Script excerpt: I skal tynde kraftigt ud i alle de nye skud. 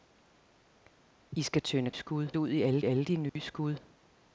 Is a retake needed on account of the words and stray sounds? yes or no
yes